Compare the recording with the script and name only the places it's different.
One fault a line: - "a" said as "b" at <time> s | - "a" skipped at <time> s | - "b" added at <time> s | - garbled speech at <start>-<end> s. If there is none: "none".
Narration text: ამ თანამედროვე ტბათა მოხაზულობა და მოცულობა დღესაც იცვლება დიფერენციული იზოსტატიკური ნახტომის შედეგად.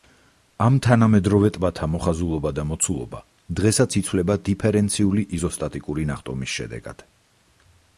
none